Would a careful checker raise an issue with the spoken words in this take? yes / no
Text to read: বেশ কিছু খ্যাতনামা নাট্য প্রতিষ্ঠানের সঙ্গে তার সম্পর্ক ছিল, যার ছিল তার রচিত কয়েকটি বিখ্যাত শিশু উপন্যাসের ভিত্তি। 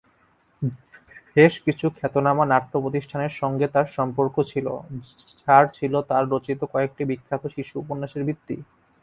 no